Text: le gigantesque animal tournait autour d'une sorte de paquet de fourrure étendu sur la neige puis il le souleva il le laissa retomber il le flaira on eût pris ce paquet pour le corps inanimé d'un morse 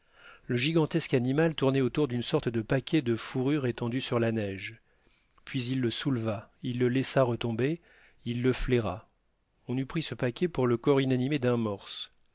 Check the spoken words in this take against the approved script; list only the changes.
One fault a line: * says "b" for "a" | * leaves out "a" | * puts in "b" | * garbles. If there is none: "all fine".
all fine